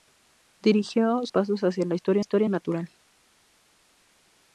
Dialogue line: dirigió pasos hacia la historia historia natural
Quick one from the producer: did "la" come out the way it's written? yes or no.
yes